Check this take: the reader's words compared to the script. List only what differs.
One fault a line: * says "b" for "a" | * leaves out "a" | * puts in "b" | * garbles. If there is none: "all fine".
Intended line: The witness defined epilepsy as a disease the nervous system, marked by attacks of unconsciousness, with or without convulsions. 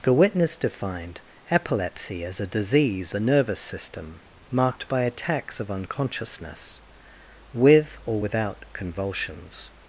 all fine